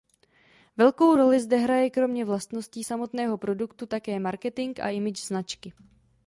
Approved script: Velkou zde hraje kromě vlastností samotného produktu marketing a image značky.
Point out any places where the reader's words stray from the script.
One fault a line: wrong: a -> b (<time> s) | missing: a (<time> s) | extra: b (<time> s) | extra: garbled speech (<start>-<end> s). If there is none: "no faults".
extra: roli (1.1 s)
extra: také (3.9 s)